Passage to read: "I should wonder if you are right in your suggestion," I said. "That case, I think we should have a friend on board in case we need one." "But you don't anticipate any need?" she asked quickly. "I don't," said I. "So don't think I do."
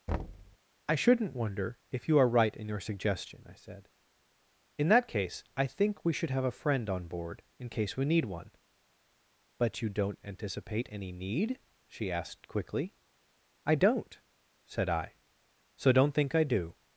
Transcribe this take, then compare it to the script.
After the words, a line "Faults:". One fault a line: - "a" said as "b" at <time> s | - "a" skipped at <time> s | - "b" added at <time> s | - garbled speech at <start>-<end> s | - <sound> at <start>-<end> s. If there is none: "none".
"I shouldn't wonder if you are right in your suggestion," I said. "In that case, I think we should have a friend on board in case we need one." "But you don't anticipate any need?" she asked quickly. "I don't," said I. "So don't think I do."
Faults:
- thud at 0.1-0.6 s
- "should" said as "shouldn't" at 0.9 s
- "In" added at 4.8 s